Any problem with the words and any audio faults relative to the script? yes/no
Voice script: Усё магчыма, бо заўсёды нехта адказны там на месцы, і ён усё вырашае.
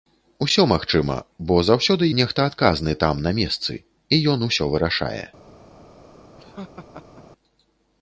yes